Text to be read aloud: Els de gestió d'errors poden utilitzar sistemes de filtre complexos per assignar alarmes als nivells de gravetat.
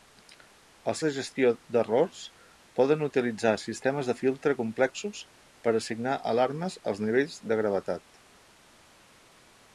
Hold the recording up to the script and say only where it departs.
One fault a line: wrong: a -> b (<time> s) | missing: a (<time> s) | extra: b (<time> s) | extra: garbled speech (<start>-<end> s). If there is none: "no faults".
no faults